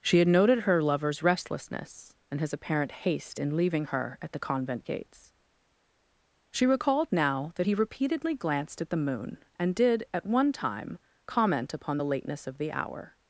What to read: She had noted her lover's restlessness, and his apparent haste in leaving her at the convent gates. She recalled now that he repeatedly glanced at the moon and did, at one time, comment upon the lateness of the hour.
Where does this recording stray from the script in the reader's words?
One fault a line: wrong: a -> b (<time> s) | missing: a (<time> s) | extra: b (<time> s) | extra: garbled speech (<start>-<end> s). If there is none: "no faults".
no faults